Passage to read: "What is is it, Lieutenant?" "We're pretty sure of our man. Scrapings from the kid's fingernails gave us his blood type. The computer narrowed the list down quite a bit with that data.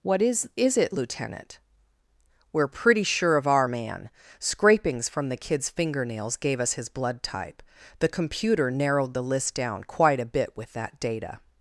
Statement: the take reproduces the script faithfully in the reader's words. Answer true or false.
true